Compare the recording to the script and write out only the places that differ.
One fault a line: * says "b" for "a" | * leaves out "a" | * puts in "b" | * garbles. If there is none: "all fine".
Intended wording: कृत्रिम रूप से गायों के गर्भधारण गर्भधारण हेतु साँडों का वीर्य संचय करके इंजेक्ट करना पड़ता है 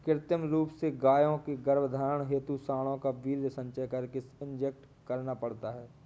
* leaves out "गर्भधारण"